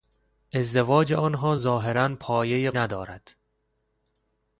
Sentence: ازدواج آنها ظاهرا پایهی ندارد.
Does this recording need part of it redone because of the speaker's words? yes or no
no